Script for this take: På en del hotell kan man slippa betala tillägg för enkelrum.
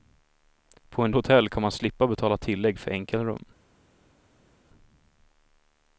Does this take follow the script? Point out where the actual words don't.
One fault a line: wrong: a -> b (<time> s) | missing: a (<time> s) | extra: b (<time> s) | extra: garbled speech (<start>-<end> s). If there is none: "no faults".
missing: del (1.1 s)